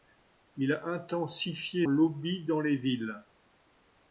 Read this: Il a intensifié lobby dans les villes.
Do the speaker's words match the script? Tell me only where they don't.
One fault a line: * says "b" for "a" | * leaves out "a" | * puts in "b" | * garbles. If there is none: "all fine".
all fine